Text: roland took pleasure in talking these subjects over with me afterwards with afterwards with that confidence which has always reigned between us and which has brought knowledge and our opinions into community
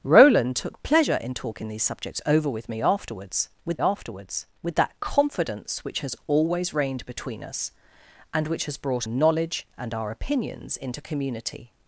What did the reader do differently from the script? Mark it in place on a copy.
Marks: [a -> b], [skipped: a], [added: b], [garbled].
roland took pleasure in talking these subjects over with me afterwards with afterwards with that confidence which has always reigned between us and which has brought knowledge and our opinions into community